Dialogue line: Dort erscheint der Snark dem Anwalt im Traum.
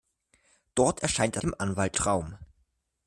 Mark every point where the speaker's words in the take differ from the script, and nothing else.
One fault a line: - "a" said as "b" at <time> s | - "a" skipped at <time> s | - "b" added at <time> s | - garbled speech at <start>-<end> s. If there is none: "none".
- "Snark" skipped at 1.4 s
- "im" skipped at 2.0 s